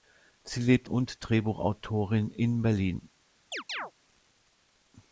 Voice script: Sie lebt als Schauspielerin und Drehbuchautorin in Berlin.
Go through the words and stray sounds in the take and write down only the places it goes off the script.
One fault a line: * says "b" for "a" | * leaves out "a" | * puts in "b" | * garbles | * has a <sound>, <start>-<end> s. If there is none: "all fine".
* leaves out "als Schauspielerin"
* has a chirp, 3.5-3.9 s